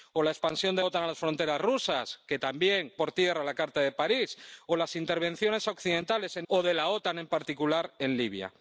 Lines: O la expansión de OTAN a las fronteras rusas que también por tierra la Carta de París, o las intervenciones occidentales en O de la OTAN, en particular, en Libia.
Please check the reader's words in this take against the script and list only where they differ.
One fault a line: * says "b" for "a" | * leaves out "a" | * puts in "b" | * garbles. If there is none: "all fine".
all fine